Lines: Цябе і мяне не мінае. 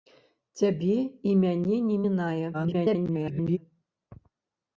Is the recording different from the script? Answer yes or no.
yes